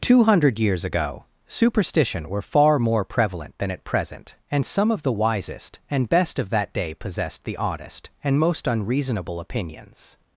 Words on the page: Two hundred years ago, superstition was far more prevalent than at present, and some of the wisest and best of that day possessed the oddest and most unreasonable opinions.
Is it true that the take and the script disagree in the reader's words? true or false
true